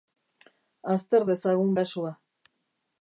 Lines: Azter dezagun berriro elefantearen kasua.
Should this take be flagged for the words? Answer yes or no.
yes